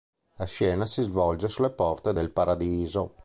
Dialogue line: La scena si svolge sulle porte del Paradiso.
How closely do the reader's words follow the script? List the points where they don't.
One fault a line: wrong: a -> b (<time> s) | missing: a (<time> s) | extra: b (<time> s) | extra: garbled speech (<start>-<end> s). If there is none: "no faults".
no faults